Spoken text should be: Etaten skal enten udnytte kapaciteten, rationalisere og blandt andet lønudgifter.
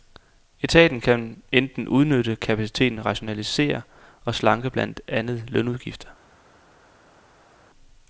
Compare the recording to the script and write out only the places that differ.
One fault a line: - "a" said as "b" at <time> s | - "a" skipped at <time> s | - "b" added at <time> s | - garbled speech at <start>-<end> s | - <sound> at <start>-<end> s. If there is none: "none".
- "skal" said as "kan" at 1.0 s
- "slanke" added at 4.3 s